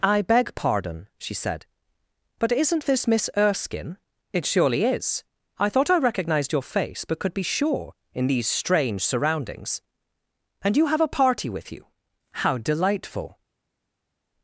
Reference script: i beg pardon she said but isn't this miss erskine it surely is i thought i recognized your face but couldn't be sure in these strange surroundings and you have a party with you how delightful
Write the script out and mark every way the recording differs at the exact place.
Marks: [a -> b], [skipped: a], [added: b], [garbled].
i beg pardon she said but isn't this miss erskine it surely is i thought i recognized your face but [couldn't -> could] be sure in these strange surroundings and you have a party with you how delightful